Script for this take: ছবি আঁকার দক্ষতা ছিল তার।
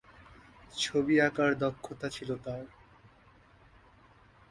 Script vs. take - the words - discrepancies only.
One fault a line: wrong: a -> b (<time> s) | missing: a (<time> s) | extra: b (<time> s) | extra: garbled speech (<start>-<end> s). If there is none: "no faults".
no faults